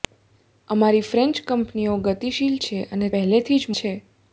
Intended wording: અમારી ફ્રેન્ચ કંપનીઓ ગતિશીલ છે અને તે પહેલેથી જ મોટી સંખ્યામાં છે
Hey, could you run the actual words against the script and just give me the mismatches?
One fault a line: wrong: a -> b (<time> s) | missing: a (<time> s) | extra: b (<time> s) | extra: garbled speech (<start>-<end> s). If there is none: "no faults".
missing: તે (3.1 s)
missing: મોટી સંખ્યામાં (3.8 s)